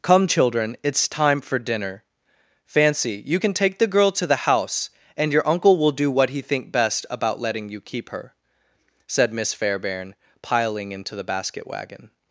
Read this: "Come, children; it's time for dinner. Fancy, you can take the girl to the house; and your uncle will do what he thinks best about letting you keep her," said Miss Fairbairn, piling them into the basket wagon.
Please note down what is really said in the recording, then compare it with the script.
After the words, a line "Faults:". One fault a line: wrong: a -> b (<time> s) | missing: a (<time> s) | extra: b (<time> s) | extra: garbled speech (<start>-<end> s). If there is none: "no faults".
"Come, children; it's time for dinner. Fancy, you can take the girl to the house; and your uncle will do what he think best about letting you keep her," said Miss Fairbairn, piling into the basket wagon.
Faults:
wrong: thinks -> think (6.4 s)
missing: them (10.9 s)